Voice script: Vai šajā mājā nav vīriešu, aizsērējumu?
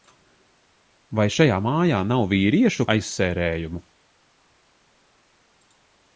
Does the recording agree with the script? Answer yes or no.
yes